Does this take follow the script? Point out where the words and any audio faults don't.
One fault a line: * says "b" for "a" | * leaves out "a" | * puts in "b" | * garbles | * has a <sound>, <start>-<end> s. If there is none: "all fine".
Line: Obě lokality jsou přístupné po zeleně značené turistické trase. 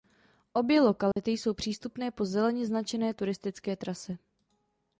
* has a dropout, 1.1-1.2 s